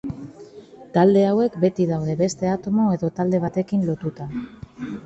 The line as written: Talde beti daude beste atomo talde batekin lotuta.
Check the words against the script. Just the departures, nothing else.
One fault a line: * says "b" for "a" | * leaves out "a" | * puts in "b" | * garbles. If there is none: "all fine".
* puts in "hauek"
* puts in "edo"